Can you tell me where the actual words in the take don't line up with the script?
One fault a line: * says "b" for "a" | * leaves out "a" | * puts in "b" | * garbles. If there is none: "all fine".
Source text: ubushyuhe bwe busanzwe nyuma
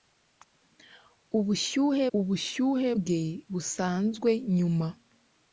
* puts in "ubushyuhe"